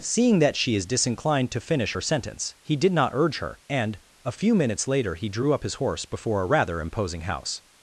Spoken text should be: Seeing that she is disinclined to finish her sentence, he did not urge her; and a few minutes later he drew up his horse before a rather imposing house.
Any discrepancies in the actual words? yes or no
no